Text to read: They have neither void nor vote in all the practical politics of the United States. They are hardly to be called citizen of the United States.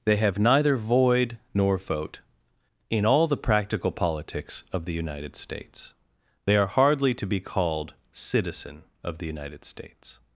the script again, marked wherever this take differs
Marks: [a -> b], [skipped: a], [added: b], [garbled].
They have neither void nor vote in all the practical politics of the United States. They are hardly to be called citizen of the United States.